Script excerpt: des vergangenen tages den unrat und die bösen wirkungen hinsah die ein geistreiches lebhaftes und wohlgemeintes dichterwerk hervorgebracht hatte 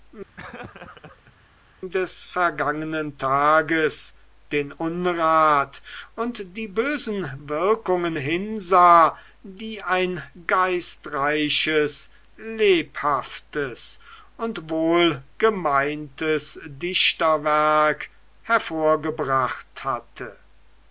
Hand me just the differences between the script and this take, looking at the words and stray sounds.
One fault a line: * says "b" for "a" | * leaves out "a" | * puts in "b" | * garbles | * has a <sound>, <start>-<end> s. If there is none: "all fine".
* has a laugh, 0.4-1.3 s